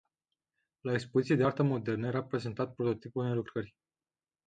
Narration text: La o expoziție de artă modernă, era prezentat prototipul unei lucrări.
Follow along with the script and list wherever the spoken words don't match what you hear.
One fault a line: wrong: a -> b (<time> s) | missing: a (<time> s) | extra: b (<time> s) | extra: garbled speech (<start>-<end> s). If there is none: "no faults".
no faults